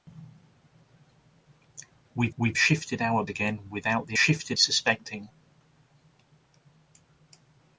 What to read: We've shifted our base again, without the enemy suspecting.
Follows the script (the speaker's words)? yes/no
no